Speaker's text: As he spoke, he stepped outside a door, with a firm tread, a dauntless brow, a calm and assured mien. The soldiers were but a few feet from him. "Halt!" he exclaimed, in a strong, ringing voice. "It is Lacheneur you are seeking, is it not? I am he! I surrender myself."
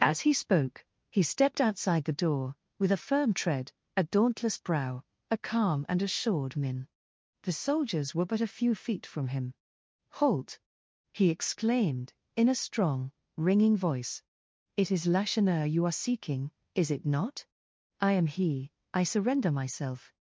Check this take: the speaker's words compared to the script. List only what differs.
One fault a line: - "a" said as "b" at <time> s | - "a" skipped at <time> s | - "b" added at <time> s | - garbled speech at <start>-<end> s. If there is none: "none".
- "a" said as "the" at 2.0 s